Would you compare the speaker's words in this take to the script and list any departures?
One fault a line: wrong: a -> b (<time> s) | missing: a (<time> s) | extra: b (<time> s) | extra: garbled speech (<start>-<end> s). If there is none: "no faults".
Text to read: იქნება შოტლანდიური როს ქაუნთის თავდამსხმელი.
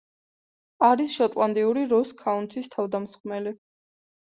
wrong: იქნება -> არის (0.9 s)